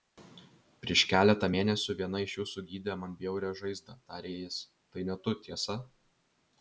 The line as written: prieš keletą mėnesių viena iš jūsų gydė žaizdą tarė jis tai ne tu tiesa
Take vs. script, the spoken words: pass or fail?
fail